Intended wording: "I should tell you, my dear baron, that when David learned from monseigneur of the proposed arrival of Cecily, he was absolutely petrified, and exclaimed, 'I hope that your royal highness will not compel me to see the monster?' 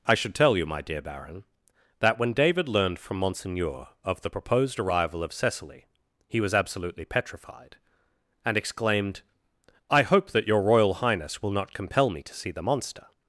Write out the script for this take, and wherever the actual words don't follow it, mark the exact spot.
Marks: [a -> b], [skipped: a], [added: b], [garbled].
"I should tell you, my dear baron, that when David learned from monseigneur of the proposed arrival of Cecily, he was absolutely petrified, and exclaimed, 'I hope that your royal highness will not compel me to see the monster?'